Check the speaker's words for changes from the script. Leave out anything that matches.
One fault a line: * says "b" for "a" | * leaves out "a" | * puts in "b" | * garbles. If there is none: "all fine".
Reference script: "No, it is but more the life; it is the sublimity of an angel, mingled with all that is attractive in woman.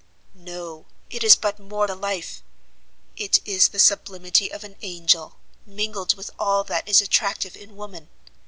all fine